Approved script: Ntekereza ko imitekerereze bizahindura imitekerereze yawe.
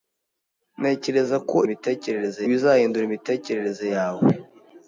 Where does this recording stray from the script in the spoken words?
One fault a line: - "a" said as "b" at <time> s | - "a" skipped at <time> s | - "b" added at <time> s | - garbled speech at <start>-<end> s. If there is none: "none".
none